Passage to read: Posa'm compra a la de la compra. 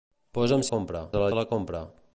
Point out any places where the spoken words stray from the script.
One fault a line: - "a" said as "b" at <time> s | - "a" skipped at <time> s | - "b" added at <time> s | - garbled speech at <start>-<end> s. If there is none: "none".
none